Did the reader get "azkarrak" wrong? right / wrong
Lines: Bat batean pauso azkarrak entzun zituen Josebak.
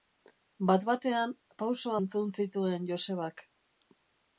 wrong